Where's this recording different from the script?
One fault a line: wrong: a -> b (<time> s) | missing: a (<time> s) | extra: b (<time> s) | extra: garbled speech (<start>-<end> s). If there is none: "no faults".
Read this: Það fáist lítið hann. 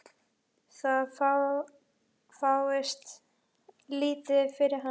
extra: fyrir (4.6 s)